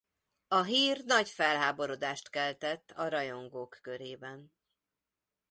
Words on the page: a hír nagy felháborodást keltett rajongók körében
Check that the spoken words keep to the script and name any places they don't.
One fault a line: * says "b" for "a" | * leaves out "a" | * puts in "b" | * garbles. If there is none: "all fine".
* puts in "a"